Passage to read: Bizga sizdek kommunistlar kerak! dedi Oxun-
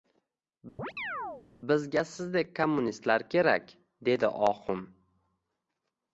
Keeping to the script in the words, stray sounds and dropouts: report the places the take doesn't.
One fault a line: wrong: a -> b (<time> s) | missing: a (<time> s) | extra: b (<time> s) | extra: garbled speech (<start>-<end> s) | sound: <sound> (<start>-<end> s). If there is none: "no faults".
sound: chirp (0.8-1.5 s)